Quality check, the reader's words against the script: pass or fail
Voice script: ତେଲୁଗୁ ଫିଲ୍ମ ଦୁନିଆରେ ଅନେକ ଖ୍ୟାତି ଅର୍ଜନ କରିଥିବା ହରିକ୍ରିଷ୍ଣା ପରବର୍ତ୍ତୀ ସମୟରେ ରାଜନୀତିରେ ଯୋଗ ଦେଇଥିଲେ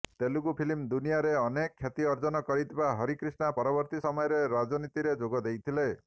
pass